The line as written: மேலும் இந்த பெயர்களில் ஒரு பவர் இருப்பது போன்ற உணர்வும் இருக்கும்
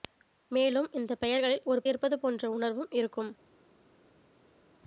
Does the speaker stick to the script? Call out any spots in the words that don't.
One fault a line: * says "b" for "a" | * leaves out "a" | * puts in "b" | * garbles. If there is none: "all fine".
* leaves out "பவர்"